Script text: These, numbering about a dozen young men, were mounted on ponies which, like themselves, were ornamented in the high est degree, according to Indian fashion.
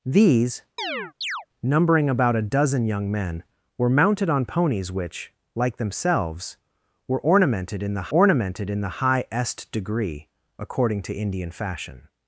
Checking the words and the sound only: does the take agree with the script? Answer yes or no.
no